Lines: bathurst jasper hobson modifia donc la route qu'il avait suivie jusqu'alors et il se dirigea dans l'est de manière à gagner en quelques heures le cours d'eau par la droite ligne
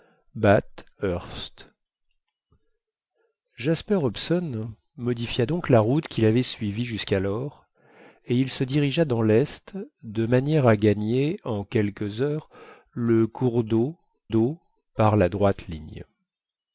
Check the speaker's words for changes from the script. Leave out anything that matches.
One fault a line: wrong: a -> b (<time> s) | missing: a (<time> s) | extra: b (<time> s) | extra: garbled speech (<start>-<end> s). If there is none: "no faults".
extra: d'eau (14.3 s)